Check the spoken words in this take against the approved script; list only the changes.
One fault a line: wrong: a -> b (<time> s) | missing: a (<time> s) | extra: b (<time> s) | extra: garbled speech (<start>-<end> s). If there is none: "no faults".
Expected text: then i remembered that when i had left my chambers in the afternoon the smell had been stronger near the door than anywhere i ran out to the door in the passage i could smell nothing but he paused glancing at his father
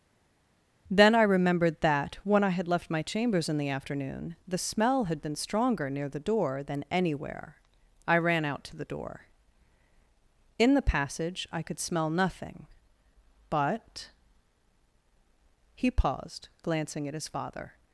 no faults